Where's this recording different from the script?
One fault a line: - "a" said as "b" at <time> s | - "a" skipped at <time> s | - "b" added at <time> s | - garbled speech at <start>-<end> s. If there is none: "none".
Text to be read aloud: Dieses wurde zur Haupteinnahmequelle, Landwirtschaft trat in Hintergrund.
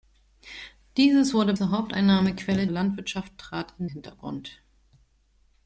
none